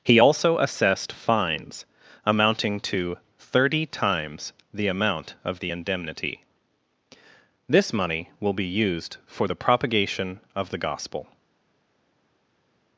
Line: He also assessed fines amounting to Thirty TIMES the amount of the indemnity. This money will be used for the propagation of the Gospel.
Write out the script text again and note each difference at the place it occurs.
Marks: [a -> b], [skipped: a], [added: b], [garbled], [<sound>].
He also assessed fines amounting to Thirty TIMES the amount of the indemnity. This money will be used for the propagation of the Gospel.